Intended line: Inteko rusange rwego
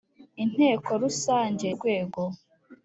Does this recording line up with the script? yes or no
yes